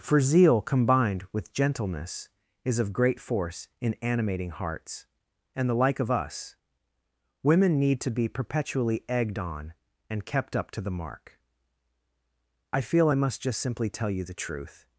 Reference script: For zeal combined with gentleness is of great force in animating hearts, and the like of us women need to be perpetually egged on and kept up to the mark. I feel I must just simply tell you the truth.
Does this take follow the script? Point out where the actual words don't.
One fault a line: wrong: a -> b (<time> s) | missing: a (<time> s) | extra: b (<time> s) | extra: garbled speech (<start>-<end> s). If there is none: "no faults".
no faults